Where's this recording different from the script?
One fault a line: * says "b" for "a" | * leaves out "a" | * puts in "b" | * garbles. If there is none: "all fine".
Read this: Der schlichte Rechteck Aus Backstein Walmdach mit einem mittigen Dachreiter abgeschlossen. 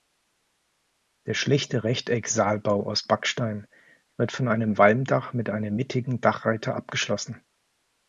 * puts in "Saalbau"
* puts in "wird von einem"